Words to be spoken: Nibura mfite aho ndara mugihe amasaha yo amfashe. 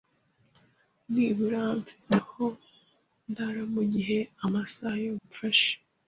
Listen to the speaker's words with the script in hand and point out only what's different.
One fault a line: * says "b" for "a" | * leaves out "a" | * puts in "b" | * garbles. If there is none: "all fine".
all fine